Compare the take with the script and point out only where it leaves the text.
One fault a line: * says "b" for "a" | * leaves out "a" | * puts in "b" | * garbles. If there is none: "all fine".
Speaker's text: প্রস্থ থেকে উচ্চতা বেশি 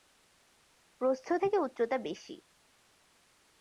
all fine